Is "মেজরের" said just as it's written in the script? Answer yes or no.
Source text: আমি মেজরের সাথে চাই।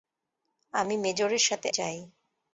yes